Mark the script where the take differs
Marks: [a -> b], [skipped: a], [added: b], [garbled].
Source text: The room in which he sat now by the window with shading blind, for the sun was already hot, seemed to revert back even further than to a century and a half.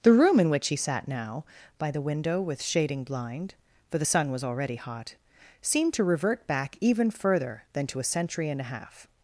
The room in which he sat now by the window with shading blind, for the sun was already hot, seemed to revert back even further than to a century and a half.